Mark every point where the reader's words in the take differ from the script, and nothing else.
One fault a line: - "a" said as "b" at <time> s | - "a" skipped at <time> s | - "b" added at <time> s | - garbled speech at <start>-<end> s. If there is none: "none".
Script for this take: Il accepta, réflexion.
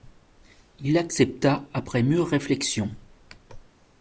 - "après mûre" added at 1.8 s